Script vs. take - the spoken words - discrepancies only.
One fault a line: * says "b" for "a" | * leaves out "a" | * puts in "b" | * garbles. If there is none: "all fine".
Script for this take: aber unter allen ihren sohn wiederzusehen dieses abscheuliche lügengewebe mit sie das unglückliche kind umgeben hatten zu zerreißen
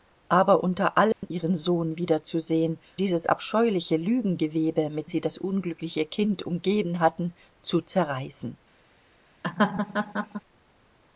all fine